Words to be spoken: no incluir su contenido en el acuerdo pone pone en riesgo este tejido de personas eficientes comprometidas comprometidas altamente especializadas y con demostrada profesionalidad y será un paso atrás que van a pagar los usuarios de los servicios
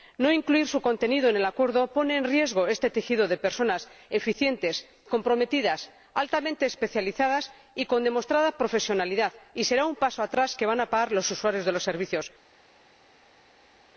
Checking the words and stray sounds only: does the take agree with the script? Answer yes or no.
no